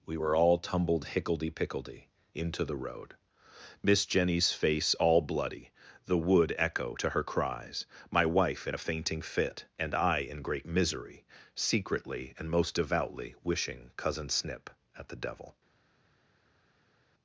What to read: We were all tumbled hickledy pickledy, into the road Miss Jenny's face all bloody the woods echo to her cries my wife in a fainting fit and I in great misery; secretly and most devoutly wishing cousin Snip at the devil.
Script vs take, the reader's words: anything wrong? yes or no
yes